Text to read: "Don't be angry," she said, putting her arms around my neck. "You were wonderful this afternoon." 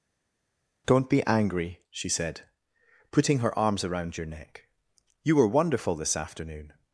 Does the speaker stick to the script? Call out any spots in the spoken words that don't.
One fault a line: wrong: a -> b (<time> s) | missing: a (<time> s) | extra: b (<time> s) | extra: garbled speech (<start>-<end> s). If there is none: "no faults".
wrong: my -> your (4.2 s)